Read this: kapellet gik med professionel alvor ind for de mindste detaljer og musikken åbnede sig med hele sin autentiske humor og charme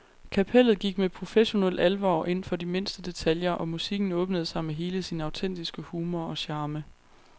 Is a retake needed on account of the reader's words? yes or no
no